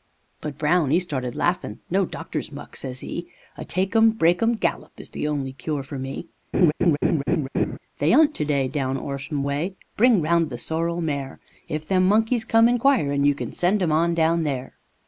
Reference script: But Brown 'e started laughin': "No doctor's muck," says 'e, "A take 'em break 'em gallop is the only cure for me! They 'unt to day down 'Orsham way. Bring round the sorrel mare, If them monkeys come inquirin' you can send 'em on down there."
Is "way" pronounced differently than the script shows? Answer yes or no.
no